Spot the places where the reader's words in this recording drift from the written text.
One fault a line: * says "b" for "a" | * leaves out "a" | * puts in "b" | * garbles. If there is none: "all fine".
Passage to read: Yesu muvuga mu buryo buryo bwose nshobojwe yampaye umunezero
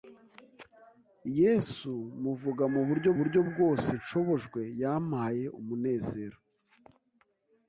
all fine